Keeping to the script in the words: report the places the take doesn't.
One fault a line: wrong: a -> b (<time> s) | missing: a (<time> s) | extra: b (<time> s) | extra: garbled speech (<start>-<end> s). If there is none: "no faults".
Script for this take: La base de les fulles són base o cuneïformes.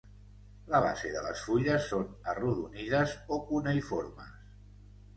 wrong: base -> arrodonides (2.3 s)